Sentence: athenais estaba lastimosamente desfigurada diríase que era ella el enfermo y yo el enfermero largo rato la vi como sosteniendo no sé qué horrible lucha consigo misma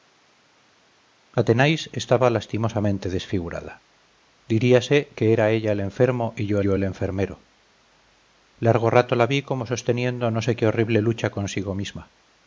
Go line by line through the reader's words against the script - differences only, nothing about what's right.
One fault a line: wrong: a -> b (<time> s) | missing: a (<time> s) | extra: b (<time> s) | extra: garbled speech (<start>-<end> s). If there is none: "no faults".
extra: yo (6.6 s)